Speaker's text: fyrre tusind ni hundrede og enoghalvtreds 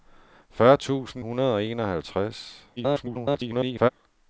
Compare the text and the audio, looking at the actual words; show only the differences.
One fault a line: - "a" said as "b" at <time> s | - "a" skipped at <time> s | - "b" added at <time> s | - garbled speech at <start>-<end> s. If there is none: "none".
- "ni" skipped at 1.2 s
- garbled speech at 2.8-3.9 s